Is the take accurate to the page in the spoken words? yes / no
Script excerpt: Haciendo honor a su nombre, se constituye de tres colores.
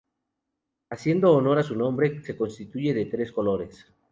yes